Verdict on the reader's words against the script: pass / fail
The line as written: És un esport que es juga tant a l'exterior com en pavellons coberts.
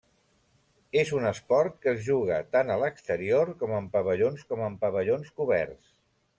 fail